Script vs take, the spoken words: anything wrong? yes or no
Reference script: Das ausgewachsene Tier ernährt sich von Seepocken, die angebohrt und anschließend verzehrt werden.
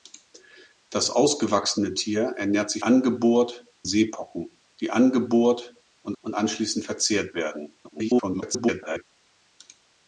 yes